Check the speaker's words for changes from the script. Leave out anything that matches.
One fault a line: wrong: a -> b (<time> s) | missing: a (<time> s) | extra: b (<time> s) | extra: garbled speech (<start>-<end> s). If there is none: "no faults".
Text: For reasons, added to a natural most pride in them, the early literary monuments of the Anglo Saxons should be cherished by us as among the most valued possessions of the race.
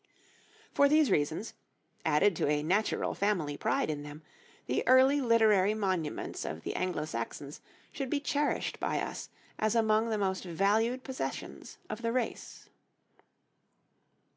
extra: these (0.9 s)
wrong: most -> family (3.1 s)